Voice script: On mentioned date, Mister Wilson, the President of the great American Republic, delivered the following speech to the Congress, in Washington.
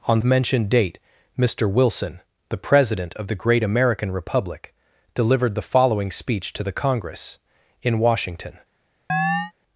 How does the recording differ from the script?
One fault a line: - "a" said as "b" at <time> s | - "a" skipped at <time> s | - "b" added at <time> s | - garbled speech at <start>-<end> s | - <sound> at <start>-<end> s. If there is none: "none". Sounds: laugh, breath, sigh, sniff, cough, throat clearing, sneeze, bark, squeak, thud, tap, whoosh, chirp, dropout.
- chirp at 9.1-9.5 s